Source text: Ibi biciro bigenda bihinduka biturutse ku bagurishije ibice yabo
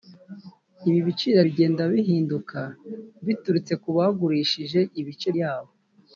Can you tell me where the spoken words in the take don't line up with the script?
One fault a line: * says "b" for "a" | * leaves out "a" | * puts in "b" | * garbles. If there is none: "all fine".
all fine